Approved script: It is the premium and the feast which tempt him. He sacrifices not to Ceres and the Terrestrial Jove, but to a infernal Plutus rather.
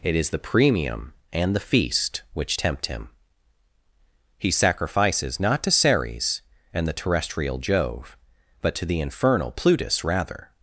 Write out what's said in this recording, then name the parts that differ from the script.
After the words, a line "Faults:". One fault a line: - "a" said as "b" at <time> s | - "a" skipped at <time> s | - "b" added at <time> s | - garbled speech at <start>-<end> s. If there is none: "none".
It is the premium and the feast which tempt him. He sacrifices not to Ceres and the Terrestrial Jove, but to the infernal Plutus rather.
Faults:
- "a" said as "the" at 8.8 s